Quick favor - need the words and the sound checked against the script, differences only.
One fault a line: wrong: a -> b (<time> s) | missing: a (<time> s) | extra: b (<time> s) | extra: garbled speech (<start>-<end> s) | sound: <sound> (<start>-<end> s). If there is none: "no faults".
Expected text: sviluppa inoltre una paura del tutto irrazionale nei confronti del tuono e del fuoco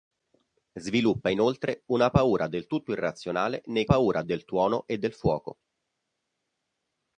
wrong: confronti -> paura (3.8 s)